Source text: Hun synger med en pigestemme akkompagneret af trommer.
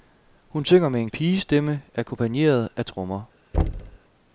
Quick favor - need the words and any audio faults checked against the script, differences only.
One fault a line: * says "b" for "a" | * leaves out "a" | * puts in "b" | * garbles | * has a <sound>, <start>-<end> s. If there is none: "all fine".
* has a thud, 3.5-4.0 s